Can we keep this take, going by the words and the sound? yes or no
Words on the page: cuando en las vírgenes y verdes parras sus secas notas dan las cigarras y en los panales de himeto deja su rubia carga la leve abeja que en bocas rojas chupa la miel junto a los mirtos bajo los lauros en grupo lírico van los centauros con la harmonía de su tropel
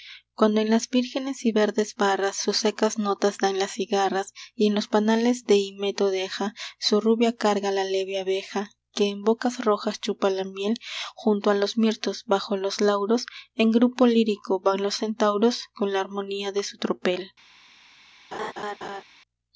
no